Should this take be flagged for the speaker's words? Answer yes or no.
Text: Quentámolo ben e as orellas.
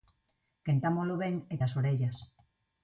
no